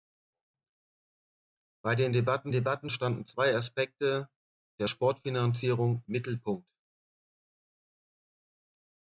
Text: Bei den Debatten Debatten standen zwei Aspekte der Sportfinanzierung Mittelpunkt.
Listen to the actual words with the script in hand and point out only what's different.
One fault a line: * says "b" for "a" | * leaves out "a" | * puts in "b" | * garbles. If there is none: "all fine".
all fine